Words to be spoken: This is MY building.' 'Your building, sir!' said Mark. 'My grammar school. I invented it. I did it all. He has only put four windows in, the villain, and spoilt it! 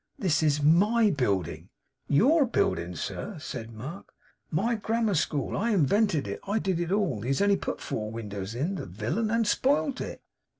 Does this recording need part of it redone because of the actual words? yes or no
no